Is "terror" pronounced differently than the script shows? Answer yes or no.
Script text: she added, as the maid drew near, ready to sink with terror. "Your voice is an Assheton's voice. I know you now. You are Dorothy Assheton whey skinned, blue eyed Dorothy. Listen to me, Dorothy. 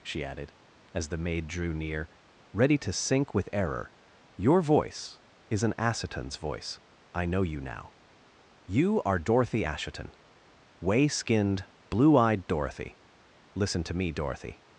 yes